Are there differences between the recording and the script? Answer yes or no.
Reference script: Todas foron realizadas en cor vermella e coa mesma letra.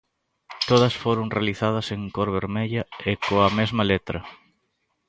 no